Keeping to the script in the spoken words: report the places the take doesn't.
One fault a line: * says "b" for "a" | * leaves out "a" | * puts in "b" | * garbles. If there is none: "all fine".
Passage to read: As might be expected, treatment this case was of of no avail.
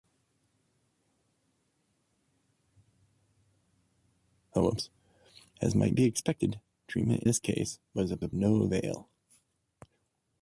all fine